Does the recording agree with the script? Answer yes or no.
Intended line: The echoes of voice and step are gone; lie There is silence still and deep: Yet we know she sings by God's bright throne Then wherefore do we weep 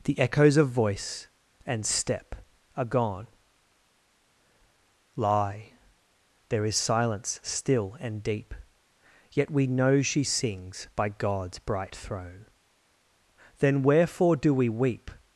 yes